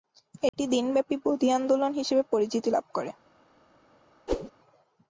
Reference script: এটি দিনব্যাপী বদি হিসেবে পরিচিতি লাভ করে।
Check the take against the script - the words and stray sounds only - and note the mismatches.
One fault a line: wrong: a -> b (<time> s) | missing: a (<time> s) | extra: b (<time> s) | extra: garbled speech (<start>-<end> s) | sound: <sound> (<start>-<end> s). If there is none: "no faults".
sound: dropout (0.5-0.5 s)
extra: আন্দোলন (1.5 s)
sound: whoosh (4.3-4.5 s)